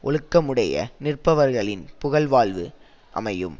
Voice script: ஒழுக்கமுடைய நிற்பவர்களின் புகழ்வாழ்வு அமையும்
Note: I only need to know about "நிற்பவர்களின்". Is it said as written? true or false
true